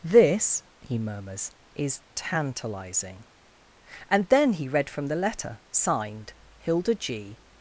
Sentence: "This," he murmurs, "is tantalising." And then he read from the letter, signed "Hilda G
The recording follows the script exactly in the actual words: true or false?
true